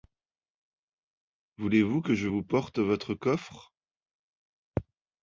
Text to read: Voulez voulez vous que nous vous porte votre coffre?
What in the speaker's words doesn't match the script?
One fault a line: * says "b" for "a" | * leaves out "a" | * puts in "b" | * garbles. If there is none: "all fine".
* leaves out "voulez"
* says "je" for "nous"